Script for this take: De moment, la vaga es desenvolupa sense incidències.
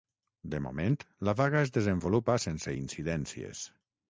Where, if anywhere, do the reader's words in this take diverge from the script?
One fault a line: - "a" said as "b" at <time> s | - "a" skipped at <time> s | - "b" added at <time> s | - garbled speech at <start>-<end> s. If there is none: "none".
none